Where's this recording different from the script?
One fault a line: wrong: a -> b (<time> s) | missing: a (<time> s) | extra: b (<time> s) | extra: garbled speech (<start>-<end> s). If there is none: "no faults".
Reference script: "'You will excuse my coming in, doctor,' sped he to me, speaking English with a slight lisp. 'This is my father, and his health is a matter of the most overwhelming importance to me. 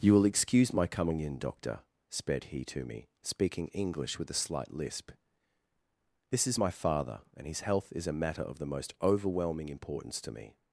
no faults